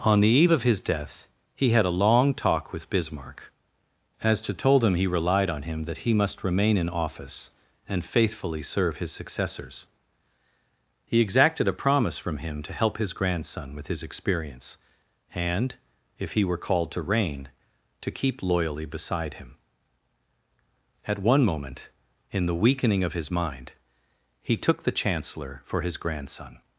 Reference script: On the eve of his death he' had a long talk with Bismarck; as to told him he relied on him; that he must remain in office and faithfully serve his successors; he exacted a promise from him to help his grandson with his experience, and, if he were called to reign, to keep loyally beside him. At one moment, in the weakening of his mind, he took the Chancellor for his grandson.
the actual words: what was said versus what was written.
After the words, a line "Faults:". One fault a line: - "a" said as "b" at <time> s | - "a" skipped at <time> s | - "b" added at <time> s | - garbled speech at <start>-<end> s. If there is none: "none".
On the eve of his death he' had a long talk with Bismarck; as to told him he relied on him; that he must remain in office and faithfully serve his successors; he exacted a promise from him to help his grandson with his experience, and, if he were called to reign, to keep loyally beside him. At one moment, in the weakening of his mind, he took the Chancellor for his grandson.
Faults:
none